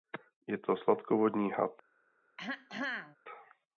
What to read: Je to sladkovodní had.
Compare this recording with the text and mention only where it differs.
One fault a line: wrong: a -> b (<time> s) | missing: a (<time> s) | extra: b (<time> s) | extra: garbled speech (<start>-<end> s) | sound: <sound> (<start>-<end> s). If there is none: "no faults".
sound: throat clearing (2.4-3.2 s)